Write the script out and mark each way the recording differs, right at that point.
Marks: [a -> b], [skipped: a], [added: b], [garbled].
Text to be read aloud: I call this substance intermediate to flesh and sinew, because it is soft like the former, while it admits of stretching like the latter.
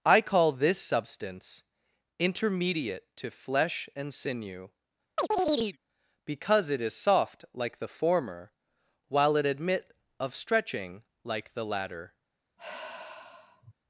I call this substance intermediate to flesh and sinew, because it is soft like the former, while it [admits -> admit] of stretching like the latter.